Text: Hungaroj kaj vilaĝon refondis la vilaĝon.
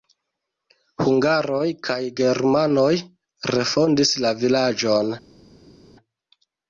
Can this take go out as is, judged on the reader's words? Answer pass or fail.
fail